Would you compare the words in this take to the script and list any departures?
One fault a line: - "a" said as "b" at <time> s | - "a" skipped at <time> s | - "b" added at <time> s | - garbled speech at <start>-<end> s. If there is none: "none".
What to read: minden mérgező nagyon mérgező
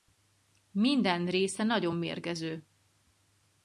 - "mérgező" said as "része" at 1.2 s